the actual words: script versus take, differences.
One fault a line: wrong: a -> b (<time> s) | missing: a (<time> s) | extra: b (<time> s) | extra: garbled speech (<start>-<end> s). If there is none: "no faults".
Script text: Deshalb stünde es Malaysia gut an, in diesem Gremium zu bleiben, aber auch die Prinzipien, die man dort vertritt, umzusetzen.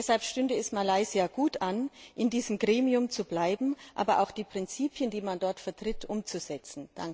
no faults